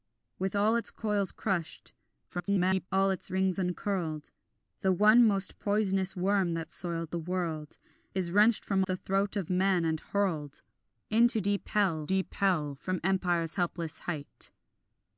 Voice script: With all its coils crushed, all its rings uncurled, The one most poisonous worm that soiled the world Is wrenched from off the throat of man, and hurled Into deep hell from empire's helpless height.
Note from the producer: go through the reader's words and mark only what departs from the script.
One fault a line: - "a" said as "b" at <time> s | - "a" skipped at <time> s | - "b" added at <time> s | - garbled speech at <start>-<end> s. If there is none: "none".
- garbled speech at 2.3-2.9 s
- "off" skipped at 8.8 s
- "deep hell" added at 12.1 s